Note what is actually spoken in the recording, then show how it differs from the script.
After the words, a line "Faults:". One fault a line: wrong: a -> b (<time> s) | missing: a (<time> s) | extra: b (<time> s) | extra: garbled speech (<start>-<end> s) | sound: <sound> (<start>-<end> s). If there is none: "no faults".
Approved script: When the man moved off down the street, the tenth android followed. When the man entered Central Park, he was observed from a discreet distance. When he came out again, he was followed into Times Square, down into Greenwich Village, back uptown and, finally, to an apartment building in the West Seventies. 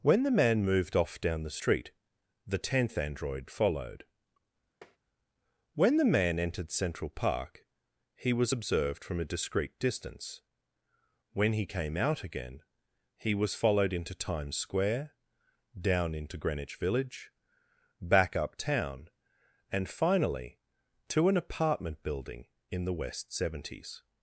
When the man moved off down the street, the tenth android followed. When the man entered Central Park, he was observed from a discreet distance. When he came out again, he was followed into Times Square, down into Greenwich Village, back uptown and, finally, to an apartment building in the West Seventies.
Faults:
sound: tap (4.8-5.0 s)